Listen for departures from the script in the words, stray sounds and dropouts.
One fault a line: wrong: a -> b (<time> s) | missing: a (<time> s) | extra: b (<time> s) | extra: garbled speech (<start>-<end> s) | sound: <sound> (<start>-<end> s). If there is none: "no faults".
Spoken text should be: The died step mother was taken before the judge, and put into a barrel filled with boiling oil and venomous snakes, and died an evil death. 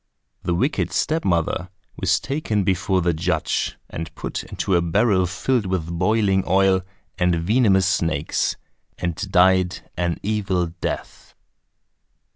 wrong: died -> wicked (0.6 s)